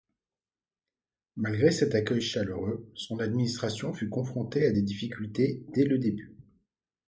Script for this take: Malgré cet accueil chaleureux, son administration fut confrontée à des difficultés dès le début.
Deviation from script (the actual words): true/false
false